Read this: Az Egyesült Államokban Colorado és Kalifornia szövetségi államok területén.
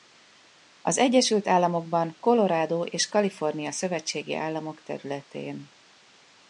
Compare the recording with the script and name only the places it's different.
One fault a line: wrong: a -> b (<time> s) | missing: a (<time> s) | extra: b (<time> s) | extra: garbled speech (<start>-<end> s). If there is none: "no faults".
no faults